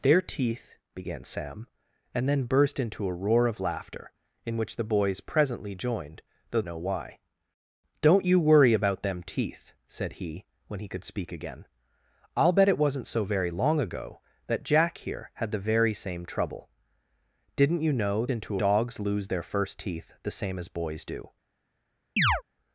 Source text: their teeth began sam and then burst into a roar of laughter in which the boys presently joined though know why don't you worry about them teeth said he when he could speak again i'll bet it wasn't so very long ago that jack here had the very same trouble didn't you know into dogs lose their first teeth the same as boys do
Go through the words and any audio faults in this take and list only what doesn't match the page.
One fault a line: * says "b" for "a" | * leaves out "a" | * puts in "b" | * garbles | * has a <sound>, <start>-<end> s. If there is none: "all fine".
* has a chirp, 22.2-22.4 s